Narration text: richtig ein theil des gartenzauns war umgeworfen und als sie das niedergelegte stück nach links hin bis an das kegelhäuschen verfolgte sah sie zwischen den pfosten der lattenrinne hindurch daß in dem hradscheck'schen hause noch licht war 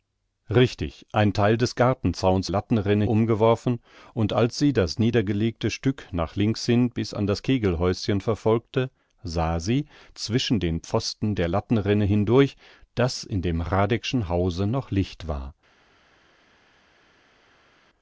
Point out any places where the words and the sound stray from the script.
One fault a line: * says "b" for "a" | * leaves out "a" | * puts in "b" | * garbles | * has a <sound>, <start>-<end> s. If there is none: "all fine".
* says "lattenrinne" for "war"